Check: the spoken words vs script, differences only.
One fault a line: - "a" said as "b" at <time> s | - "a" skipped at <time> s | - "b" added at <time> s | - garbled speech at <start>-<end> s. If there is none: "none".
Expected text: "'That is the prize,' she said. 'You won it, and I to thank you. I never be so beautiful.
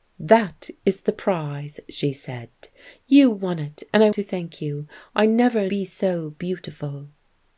none